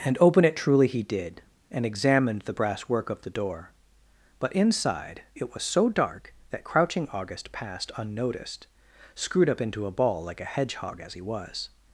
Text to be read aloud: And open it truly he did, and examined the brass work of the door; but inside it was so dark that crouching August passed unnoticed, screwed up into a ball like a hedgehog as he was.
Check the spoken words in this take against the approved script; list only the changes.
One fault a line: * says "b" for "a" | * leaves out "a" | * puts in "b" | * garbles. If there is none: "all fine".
all fine